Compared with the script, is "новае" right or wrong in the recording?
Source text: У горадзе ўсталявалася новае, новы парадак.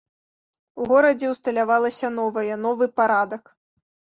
right